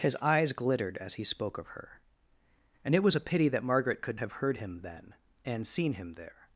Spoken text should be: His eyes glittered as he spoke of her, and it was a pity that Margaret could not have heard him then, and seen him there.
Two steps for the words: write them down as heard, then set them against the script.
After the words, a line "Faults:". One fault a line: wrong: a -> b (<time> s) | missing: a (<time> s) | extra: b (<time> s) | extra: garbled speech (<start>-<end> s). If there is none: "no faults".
His eyes glittered as he spoke of her, and it was a pity that Margaret could have heard him then, and seen him there.
Faults:
missing: not (4.2 s)